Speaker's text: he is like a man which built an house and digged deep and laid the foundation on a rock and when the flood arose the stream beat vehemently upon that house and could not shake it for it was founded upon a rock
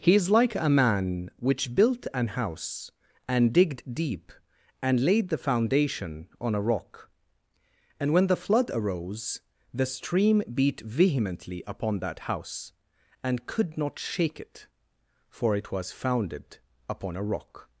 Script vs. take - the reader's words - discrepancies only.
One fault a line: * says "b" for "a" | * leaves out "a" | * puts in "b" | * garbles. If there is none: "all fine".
all fine